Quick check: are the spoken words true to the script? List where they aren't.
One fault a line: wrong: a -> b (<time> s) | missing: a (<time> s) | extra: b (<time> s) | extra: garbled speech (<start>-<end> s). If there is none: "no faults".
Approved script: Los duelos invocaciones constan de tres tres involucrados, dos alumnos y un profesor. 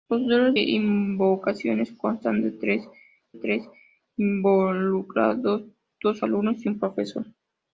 no faults